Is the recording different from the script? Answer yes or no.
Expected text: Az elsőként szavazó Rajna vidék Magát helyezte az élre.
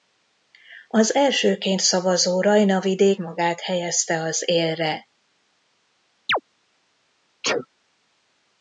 no